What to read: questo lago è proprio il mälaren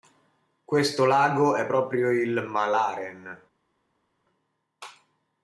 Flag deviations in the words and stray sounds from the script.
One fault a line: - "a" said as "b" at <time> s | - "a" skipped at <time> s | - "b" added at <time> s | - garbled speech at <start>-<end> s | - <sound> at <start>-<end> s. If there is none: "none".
none